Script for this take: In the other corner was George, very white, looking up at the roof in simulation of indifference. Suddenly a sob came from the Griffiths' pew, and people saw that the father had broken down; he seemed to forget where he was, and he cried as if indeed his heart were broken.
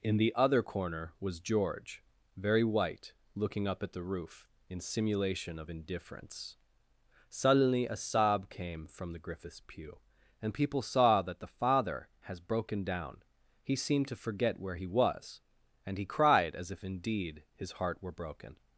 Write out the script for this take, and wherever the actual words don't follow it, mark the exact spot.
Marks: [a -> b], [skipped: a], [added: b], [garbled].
In the other corner was George, very white, looking up at the roof in simulation of indifference. Suddenly a sob came from the Griffiths' pew, and people saw that the father [had -> has] broken down; he seemed to forget where he was, and he cried as if indeed his heart were broken.